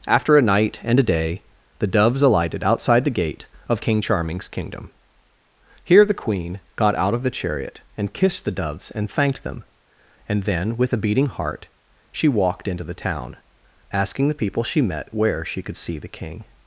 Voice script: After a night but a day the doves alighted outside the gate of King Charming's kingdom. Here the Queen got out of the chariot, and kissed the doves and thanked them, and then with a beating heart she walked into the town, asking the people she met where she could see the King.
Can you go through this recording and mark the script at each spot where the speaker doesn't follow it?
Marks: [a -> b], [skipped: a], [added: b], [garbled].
After a night [but -> and] a day the doves alighted outside the gate of King Charming's kingdom. Here the Queen got out of the chariot, and kissed the doves and thanked them, and then with a beating heart she walked into the town, asking the people she met where she could see the King.